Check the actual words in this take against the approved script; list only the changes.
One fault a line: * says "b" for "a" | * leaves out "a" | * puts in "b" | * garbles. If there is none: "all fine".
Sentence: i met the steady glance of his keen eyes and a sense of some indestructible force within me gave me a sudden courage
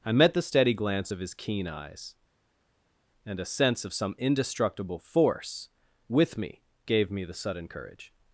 * says "with" for "within"
* says "the" for "a"